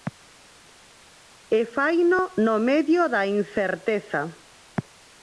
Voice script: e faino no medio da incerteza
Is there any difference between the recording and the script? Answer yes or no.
no